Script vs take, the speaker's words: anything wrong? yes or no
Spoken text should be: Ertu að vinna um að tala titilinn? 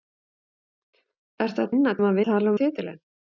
no